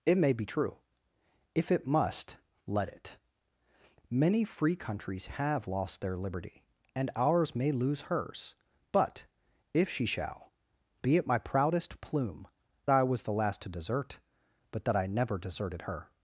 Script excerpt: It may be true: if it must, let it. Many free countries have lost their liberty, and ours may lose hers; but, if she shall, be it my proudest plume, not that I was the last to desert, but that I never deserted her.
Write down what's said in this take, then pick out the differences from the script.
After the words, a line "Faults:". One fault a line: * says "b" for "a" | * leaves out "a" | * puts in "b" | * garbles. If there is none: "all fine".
It may be true: if it must, let it. Many free countries have lost their liberty, and ours may lose hers; but, if she shall, be it my proudest plume, I was the last to desert, but that I never deserted her.
Faults:
* leaves out "not that"